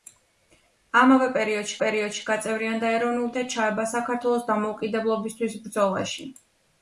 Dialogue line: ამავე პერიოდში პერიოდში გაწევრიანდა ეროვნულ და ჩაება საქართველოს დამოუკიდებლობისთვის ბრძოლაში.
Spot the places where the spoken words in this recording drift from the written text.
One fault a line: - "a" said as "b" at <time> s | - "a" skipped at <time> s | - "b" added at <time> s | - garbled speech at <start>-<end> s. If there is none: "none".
none